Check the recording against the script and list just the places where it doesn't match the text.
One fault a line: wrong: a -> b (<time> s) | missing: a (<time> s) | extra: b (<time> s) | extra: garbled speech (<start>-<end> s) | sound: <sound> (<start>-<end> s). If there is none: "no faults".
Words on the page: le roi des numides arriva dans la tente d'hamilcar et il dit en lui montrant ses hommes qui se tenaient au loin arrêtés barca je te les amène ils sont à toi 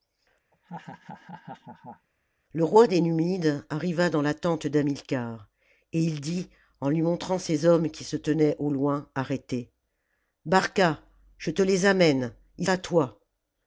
sound: laugh (0.5-2.1 s)
missing: sont (12.7 s)